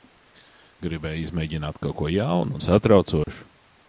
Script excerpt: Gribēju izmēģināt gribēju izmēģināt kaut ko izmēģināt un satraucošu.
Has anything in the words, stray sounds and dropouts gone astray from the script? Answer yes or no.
yes